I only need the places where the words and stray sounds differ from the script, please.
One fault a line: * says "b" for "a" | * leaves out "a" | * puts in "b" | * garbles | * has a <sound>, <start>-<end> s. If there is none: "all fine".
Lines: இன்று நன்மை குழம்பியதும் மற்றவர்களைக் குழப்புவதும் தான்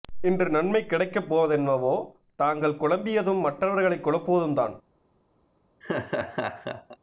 * puts in "கிடைக்கப் போவதென்னவோ தாங்கள்"
* has a laugh, 5.8-7.0 s